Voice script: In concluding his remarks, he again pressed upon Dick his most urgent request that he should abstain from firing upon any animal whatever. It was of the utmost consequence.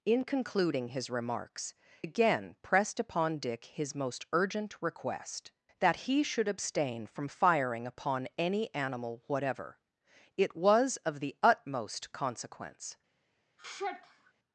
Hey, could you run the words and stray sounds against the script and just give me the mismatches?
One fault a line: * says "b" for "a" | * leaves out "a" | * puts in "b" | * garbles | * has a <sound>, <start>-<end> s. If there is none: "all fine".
* leaves out "he"
* has a sigh, 13.6-14.3 s